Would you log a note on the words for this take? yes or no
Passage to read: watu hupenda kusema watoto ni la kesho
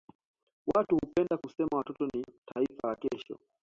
yes